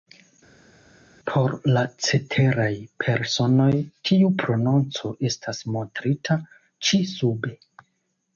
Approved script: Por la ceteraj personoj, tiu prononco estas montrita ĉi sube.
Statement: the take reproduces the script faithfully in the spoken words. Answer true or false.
true